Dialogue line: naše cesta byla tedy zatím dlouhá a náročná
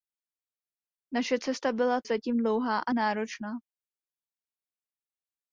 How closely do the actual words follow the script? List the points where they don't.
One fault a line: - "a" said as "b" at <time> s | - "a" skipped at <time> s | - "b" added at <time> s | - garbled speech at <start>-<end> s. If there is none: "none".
- "tedy" skipped at 2.0 s